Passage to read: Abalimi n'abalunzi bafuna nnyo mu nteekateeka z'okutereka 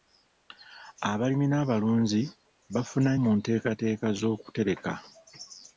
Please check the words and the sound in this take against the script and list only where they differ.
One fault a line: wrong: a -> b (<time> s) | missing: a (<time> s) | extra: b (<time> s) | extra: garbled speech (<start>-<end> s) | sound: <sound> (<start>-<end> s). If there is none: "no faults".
missing: nnyo (3.1 s)